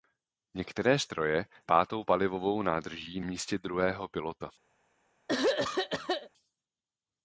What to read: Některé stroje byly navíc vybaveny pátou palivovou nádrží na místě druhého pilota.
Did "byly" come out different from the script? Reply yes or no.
yes